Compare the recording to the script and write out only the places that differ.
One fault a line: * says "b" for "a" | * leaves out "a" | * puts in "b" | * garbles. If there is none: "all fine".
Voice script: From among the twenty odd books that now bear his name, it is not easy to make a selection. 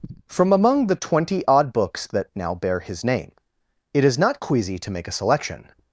* says "queasy" for "easy"